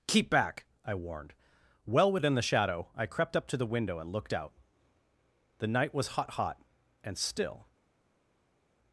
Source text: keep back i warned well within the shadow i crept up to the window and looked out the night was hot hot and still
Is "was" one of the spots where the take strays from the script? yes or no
no